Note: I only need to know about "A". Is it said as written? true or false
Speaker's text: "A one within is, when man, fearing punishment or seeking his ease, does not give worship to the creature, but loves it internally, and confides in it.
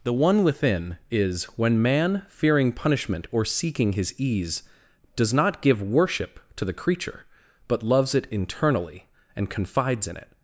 false